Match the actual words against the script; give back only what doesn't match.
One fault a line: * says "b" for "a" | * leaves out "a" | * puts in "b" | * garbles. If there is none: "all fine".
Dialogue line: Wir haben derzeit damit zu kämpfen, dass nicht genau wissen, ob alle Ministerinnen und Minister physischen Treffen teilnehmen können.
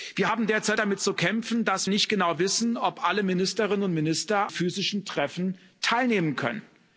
all fine